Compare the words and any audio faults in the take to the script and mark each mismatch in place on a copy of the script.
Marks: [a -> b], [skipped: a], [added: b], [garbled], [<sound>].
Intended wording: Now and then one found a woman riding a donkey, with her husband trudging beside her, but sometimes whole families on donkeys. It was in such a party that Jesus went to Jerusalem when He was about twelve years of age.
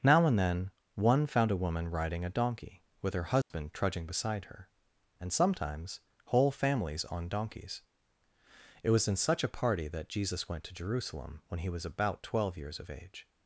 Now and then one found a woman riding a donkey, with her husband [dropout] trudging beside her, [but -> and] sometimes whole families on donkeys. It was in such a party that Jesus went to Jerusalem when He was about twelve years of age.